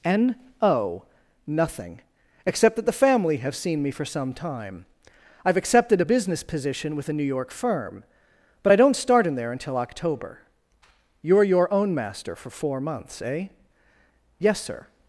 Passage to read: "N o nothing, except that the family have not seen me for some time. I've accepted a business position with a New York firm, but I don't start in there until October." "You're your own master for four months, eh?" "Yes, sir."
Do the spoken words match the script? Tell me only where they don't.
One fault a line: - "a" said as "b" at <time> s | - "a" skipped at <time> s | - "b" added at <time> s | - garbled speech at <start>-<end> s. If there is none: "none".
- "not" skipped at 3.5 s